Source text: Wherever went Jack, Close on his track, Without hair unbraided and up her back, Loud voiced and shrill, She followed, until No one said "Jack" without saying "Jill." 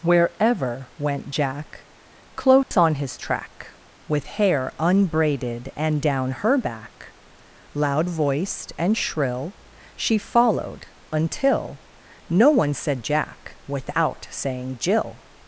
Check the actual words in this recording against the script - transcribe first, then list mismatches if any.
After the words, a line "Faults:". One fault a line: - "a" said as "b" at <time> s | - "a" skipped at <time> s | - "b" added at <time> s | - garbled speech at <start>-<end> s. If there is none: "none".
Wherever went Jack, Close on his track, With hair unbraided and down her back, Loud voiced and shrill, She followed, until No one said "Jack" without saying "Jill."
Faults:
- "Without" said as "With" at 4.1 s
- "up" said as "down" at 6.0 s